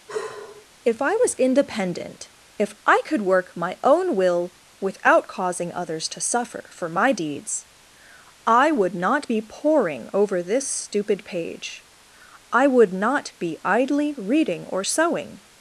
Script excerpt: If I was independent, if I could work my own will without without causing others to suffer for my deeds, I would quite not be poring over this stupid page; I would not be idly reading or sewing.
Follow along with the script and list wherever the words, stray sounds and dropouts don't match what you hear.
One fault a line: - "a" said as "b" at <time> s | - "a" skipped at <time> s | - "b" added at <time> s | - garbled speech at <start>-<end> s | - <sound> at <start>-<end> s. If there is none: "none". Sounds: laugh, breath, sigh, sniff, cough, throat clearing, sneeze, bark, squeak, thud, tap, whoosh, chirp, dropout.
- sigh at 0.1-0.7 s
- "without" skipped at 5.3 s
- "quite" skipped at 8.9 s